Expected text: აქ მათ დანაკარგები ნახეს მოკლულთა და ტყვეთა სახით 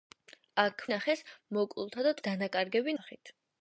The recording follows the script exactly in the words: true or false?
false